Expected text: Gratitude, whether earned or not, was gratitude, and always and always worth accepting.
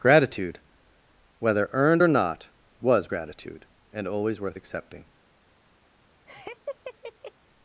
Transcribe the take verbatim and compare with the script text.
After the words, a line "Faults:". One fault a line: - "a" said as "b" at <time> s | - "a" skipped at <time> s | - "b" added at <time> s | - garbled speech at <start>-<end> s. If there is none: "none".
Gratitude, whether earned or not, was gratitude, and always worth accepting.
Faults:
- "and always" skipped at 4.4 s